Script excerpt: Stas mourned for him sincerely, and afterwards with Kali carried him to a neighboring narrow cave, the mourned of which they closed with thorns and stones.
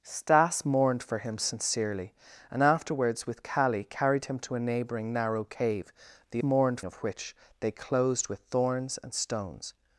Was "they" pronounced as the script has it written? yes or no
yes